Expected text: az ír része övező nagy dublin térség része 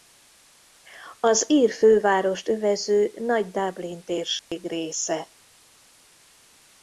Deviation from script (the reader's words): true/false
true